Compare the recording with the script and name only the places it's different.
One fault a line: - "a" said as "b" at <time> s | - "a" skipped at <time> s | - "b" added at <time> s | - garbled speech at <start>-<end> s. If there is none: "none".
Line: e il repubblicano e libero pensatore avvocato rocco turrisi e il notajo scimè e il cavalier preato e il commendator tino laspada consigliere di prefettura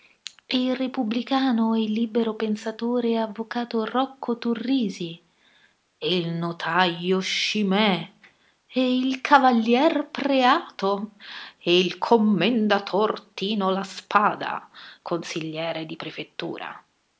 none